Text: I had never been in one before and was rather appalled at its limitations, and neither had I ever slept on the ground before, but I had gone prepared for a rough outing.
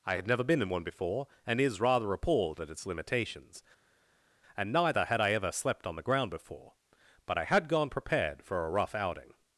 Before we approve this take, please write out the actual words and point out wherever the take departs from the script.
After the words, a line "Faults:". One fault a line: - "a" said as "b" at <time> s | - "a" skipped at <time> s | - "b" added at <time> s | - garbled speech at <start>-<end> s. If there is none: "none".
I had never been in one before and is rather appalled at its limitations, and neither had I ever slept on the ground before, but I had gone prepared for a rough outing.
Faults:
- "was" said as "is" at 1.6 s